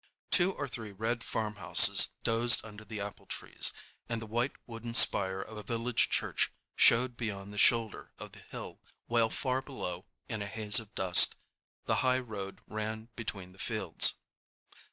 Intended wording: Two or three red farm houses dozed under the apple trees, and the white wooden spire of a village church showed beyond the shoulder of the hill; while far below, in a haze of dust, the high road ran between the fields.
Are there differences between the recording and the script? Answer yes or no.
no